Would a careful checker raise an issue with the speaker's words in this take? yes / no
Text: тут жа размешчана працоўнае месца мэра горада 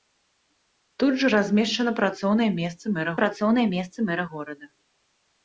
yes